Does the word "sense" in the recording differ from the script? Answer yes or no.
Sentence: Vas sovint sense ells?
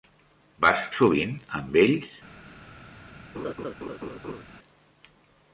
yes